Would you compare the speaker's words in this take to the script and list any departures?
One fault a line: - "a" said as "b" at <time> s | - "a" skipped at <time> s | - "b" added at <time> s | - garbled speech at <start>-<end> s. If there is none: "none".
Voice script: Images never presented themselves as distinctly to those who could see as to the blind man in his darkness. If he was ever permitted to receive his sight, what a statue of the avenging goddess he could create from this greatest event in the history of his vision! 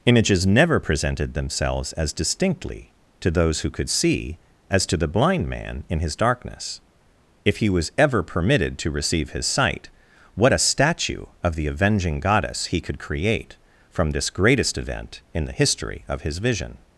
none